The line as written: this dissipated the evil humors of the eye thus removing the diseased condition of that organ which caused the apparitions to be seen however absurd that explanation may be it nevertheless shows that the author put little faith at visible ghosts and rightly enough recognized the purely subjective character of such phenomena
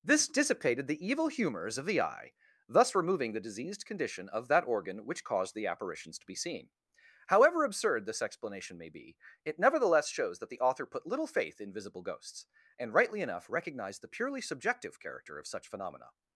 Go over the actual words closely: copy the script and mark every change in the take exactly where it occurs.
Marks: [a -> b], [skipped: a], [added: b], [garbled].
this dissipated the evil humors of the eye thus removing the diseased condition of that organ which caused the apparitions to be seen however absurd [that -> this] explanation may be it nevertheless shows that the author put little faith [at -> in] visible ghosts and rightly enough recognized the purely subjective character of such phenomena